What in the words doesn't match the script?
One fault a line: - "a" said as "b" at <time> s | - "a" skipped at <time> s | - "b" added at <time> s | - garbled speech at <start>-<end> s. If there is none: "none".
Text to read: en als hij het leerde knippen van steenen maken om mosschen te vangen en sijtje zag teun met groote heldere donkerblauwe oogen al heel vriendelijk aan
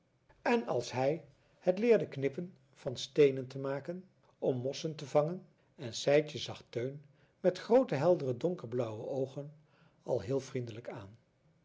- "te" added at 3.5 s